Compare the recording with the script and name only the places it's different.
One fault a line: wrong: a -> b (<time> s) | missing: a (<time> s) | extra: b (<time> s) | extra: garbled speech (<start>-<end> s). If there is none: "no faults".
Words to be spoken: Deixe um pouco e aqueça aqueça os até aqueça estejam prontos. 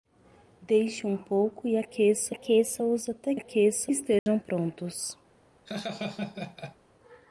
no faults